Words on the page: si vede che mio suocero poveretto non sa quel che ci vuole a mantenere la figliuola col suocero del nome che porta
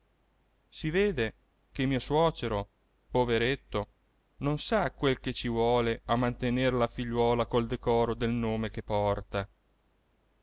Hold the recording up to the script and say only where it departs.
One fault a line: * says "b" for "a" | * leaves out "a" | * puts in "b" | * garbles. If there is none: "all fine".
* says "decoro" for "suocero"